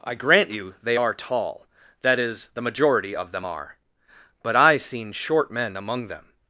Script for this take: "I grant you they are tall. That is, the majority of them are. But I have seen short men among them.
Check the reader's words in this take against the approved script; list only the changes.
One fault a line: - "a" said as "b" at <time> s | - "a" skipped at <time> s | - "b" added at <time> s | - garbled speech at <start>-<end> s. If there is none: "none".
- "have" skipped at 4.8 s